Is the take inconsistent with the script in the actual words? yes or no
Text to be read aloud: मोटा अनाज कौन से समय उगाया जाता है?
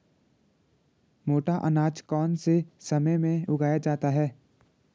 yes